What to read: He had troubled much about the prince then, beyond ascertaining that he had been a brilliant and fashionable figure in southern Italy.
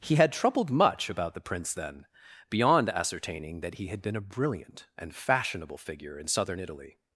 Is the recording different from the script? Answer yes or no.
no